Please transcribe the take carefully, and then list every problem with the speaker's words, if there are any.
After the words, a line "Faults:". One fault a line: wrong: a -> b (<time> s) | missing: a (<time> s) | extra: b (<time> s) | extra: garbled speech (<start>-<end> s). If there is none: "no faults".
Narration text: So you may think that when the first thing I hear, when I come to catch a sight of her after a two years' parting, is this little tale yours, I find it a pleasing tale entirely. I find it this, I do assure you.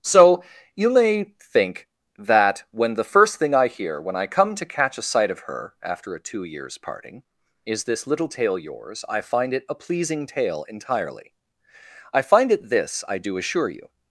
So you may think that when the first thing I hear, when I come to catch a sight of her after a two years' parting, is this little tale yours, I find it a pleasing tale entirely. I find it this, I do assure you.
Faults:
no faults